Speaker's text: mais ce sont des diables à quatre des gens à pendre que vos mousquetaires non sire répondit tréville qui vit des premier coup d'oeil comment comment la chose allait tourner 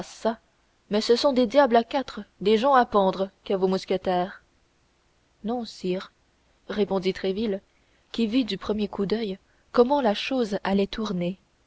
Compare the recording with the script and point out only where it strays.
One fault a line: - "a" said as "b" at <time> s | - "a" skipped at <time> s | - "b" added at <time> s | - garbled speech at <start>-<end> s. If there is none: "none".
- "des" said as "du" at 8.4 s
- "comment" skipped at 10.0 s